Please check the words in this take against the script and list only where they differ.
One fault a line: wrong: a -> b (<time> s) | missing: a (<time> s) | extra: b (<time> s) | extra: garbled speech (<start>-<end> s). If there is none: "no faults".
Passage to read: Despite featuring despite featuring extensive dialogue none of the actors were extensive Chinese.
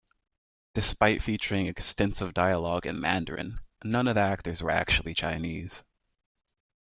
wrong: despite featuring extensive dialogue -> extensive dialogue in Mandarin (1.7 s)
wrong: extensive -> actually (4.7 s)